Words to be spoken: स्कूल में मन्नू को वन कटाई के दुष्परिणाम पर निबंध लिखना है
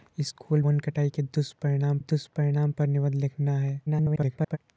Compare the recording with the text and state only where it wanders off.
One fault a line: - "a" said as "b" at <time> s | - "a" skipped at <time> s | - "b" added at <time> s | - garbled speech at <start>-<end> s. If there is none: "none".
- "में मन्नू को" skipped at 0.6 s
- "दुष्परिणाम" added at 2.0 s
- garbled speech at 3.9-4.6 s